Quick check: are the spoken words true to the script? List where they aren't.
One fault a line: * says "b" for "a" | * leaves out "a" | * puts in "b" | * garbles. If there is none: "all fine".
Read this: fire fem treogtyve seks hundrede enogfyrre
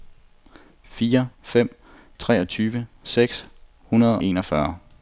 all fine